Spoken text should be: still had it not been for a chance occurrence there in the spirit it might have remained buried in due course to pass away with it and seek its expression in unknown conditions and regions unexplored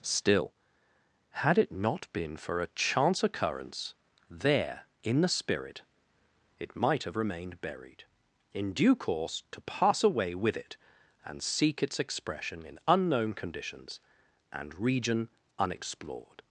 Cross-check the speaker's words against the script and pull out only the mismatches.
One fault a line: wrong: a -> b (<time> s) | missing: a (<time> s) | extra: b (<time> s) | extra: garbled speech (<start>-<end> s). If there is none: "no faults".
wrong: regions -> region (14.8 s)